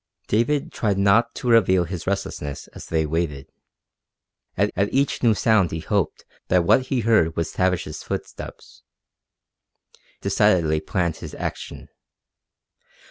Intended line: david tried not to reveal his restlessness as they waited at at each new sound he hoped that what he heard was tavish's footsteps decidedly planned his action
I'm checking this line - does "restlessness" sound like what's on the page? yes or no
yes